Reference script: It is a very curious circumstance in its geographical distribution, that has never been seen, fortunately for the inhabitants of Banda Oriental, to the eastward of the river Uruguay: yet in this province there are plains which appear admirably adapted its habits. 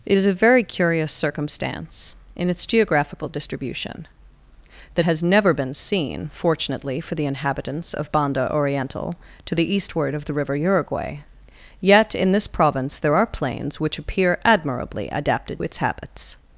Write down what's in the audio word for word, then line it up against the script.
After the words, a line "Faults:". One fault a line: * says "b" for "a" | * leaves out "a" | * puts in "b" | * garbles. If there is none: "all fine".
It is a very curious circumstance in its geographical distribution, that has never been seen, fortunately for the inhabitants of Banda Oriental, to the eastward of the river Uruguay: yet in this province there are plains which appear admirably adapted its habits.
Faults:
all fine